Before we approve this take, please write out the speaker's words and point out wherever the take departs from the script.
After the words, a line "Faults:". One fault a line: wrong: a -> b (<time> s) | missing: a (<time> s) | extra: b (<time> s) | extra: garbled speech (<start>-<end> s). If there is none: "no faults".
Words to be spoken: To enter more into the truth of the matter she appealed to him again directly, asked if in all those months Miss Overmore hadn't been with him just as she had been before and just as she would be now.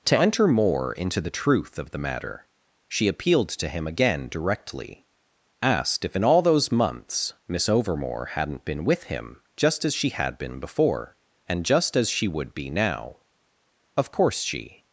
To enter more into the truth of the matter she appealed to him again directly, asked if in all those months Miss Overmore hadn't been with him just as she had been before and just as she would be now. "Of course she
Faults:
extra: Of course she (13.9 s)